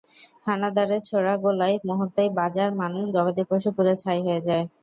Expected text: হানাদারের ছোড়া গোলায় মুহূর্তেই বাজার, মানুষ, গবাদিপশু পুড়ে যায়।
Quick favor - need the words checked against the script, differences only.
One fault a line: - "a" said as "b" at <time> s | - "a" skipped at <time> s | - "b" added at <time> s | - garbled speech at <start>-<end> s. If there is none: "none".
- "ছাই হয়ে" added at 4.0 s